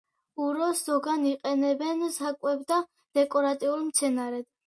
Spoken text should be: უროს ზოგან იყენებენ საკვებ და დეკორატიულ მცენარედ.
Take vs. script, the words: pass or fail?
pass